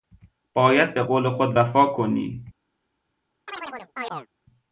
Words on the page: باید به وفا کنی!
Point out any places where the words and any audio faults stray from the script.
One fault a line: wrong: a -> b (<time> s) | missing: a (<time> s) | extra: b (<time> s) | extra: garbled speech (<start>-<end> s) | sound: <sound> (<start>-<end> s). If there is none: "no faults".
extra: قول خود (1.0 s)
sound: chirp (3.5-4.3 s)